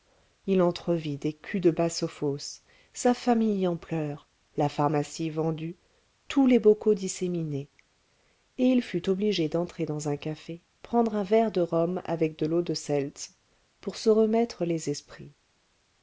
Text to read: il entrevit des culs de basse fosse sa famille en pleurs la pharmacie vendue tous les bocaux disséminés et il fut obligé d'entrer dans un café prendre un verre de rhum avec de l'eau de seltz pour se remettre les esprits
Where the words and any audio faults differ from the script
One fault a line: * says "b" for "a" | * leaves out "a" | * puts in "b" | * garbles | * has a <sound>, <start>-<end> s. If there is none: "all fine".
all fine